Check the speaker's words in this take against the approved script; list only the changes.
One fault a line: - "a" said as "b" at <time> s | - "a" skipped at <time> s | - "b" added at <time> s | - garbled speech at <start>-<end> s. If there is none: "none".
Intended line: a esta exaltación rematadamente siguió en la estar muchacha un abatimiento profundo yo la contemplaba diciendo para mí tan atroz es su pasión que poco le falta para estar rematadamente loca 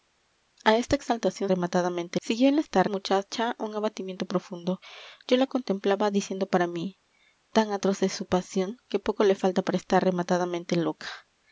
none